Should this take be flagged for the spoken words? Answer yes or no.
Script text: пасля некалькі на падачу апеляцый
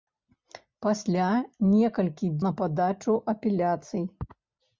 no